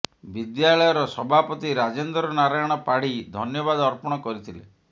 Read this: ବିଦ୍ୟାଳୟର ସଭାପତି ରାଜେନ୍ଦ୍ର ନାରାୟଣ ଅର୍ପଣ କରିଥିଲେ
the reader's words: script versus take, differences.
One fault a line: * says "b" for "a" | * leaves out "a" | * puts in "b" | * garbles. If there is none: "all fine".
* puts in "ପାଢୀ ଧନ୍ୟବାଦ"